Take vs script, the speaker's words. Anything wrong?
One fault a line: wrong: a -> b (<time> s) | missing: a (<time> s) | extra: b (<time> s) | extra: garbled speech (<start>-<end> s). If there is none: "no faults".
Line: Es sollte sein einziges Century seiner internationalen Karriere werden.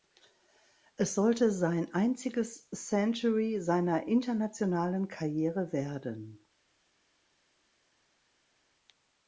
no faults